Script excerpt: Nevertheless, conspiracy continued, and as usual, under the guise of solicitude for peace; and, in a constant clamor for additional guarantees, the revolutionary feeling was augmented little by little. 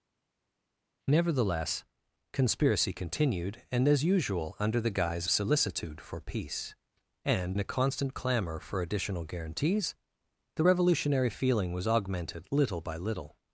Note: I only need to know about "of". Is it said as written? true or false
false